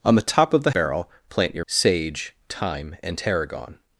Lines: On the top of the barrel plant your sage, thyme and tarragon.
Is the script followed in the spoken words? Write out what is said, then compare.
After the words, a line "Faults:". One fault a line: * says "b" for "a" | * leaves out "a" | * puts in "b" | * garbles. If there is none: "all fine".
On the top of the barrel plant your sage, thyme and tarragon.
Faults:
all fine